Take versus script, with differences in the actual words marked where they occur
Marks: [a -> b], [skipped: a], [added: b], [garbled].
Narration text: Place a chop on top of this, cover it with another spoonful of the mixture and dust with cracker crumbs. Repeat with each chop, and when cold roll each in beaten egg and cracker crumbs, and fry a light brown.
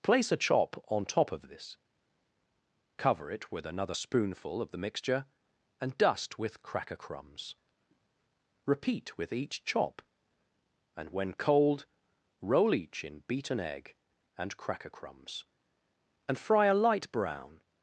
Place a chop on top of this, cover it with another spoonful of the mixture and dust with cracker crumbs. Repeat with each chop, and when cold roll each in beaten egg and cracker crumbs, and fry a light brown.